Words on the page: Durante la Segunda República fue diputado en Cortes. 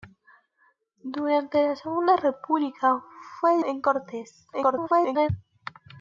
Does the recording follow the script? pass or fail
fail